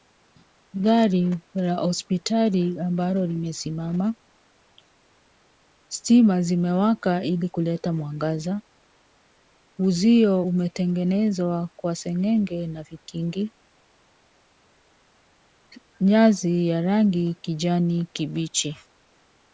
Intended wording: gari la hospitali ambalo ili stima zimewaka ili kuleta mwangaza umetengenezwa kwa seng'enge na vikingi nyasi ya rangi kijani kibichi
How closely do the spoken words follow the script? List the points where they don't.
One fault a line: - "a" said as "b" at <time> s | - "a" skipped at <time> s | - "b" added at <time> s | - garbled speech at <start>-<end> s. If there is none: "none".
- "ili" said as "limesimama" at 3.3 s
- "uzio" added at 9.8 s